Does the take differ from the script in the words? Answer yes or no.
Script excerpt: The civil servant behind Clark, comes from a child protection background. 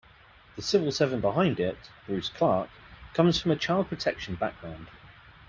yes